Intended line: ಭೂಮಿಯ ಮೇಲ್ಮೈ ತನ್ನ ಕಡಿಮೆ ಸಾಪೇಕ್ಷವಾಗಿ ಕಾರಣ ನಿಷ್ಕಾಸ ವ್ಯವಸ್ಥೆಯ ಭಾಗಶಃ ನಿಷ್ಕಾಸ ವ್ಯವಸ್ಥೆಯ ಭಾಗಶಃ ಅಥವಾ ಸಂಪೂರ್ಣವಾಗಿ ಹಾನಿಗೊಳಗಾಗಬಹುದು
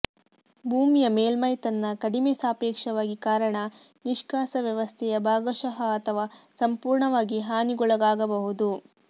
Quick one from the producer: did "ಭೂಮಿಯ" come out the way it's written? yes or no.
yes